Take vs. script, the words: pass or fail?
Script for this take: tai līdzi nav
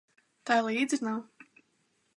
pass